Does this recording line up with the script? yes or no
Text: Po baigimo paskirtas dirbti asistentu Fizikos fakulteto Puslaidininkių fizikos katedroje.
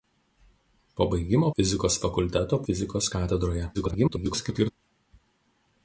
no